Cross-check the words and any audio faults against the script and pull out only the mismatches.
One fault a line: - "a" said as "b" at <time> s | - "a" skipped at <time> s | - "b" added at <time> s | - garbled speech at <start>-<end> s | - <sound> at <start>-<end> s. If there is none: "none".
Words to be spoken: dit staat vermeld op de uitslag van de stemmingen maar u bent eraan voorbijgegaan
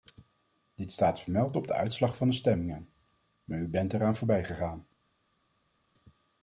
none